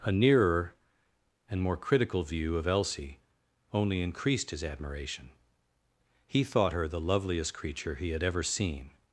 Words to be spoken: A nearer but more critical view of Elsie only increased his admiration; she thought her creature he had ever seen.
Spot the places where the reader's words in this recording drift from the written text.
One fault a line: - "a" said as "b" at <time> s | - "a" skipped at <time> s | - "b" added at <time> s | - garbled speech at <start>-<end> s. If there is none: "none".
- "but" said as "and" at 1.5 s
- "she" said as "he" at 6.3 s
- "the loveliest" added at 6.9 s